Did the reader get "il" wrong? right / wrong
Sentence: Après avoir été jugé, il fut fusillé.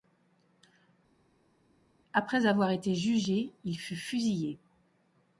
right